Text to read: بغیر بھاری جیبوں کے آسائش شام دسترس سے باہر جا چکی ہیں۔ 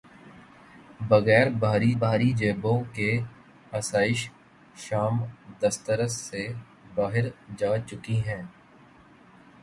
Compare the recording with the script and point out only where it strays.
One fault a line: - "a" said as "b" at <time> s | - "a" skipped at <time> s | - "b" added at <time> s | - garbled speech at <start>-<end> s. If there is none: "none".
- "بھاری" added at 2.0 s